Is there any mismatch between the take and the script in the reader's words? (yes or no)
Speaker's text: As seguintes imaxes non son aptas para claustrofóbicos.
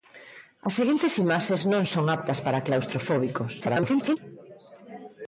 yes